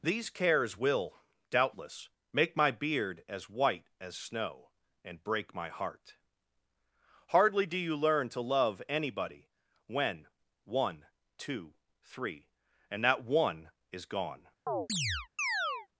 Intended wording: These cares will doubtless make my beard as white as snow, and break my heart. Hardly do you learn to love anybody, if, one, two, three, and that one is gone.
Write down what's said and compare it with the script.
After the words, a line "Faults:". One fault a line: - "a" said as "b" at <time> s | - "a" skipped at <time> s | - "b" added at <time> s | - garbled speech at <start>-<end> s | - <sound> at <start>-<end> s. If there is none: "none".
These cares will doubtless make my beard as white as snow, and break my heart. Hardly do you learn to love anybody, when, one, two, three, and that one is gone.
Faults:
- "if" said as "when" at 9.8 s
- chirp at 14.7-15.9 s